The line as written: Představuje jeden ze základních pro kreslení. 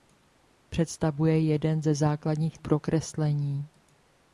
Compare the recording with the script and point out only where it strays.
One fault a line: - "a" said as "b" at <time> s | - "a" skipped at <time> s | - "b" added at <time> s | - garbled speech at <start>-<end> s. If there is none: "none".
none